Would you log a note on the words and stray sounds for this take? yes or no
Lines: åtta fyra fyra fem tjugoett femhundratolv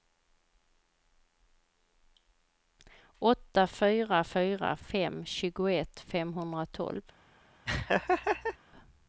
yes